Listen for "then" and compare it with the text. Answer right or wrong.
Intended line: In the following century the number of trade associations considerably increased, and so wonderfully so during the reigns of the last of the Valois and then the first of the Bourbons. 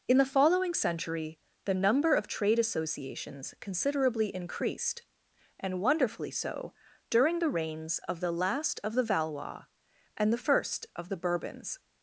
wrong